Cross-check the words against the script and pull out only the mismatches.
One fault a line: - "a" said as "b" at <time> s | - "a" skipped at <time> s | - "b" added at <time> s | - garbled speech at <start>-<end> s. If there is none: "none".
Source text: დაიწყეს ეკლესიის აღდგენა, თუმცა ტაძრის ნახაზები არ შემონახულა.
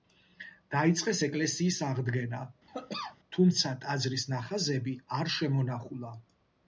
none